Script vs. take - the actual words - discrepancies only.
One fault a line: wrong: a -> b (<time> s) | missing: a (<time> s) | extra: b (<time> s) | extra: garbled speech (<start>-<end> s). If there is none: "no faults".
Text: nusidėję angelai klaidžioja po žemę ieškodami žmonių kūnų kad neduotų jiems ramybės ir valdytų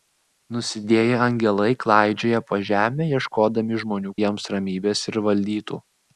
missing: kūnų kad neduotų (4.1 s)